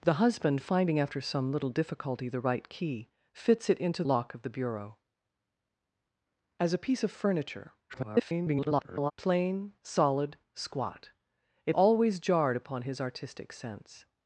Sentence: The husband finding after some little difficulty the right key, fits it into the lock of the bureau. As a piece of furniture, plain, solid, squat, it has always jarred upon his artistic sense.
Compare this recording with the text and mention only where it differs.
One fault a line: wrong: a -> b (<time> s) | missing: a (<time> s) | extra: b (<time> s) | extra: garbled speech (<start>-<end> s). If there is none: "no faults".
missing: the (4.0 s)
extra: garbled speech (7.9-9.1 s)
missing: has (11.7 s)